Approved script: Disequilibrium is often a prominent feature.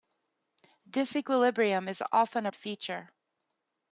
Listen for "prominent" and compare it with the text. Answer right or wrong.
wrong